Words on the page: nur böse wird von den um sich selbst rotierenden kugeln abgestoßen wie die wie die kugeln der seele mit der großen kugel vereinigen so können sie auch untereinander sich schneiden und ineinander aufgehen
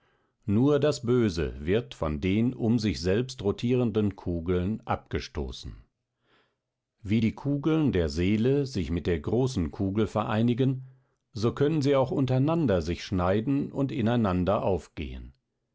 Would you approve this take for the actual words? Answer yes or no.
no